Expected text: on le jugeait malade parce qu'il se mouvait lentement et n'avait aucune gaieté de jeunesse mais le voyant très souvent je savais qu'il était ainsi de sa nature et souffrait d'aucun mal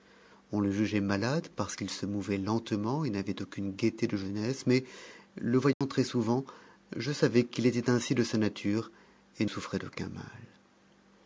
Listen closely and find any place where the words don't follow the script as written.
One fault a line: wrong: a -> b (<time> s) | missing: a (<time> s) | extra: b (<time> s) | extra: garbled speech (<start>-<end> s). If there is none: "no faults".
no faults